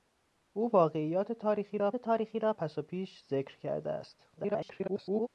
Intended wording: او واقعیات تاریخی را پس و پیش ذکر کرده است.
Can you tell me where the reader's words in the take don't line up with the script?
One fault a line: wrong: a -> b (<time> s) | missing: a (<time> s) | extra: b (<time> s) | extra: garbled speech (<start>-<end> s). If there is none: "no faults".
extra: تاریخی را (1.9 s)
extra: garbled speech (4.4-5.3 s)